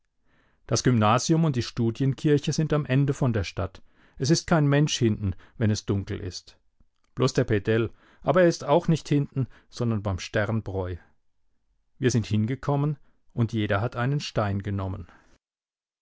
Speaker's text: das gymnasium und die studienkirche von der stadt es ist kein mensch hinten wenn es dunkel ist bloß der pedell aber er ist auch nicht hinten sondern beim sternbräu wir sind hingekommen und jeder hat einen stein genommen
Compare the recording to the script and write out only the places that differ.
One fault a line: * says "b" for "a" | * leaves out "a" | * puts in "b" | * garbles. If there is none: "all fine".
* puts in "sind am ende"